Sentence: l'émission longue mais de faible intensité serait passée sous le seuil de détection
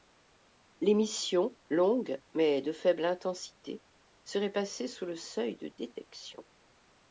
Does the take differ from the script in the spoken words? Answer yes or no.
no